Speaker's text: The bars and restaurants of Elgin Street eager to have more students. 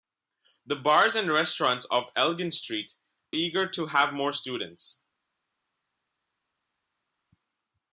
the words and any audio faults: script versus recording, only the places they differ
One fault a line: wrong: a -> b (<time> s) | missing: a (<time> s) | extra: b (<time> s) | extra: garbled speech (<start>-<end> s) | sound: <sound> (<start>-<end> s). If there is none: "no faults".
no faults